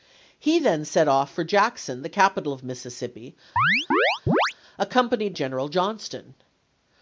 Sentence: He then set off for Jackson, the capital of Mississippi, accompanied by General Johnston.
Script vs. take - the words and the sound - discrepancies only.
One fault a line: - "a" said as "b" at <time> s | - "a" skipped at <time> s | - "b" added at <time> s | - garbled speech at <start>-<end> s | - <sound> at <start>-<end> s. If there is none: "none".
- chirp at 3.6-4.5 s
- "by" skipped at 5.4 s